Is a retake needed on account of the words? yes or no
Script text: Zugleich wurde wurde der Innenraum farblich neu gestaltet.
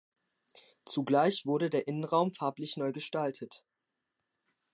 yes